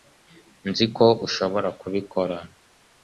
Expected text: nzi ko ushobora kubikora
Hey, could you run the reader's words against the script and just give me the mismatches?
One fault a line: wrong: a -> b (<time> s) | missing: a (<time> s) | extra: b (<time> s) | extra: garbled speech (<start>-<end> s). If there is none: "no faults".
no faults